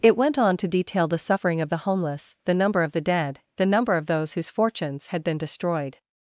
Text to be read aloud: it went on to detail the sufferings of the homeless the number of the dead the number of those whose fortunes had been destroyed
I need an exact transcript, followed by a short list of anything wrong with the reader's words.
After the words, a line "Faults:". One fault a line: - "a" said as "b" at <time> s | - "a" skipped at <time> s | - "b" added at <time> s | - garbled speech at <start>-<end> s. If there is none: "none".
it went on to detail the suffering of the homeless the number of the dead the number of those whose fortunes had been destroyed
Faults:
- "sufferings" said as "suffering" at 1.2 s